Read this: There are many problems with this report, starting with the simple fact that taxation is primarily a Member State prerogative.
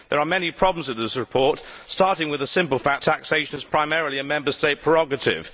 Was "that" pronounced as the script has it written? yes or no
no